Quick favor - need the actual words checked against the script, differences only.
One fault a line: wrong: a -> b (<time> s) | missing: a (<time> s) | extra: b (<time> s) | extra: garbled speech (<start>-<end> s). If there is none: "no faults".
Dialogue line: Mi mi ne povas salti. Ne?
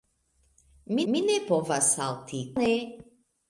no faults